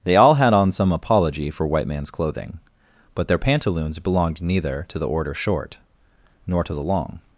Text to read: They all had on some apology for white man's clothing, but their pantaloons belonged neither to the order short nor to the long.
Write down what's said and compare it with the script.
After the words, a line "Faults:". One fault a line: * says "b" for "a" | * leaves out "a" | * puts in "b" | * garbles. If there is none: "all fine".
They all had on some apology for white man's clothing, but their pantaloons belonged neither to the order short nor to the long.
Faults:
all fine